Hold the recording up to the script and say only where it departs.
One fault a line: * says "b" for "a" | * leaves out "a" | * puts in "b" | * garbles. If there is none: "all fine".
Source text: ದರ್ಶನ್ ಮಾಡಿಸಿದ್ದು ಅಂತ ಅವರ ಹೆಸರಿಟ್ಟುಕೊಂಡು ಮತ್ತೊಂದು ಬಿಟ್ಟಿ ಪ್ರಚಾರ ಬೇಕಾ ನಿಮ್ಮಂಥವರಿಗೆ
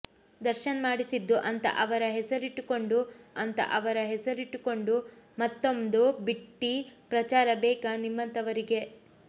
* puts in "ಅಂತ ಅವರ ಹೆಸರಿಟ್ಟುಕೊಂಡು"